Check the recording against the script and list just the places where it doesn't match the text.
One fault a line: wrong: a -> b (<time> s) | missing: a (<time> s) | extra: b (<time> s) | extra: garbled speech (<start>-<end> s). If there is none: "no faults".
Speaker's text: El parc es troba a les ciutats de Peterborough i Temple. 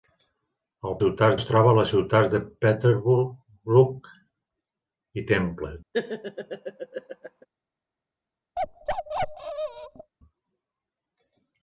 wrong: parc -> ciutats (1.0 s)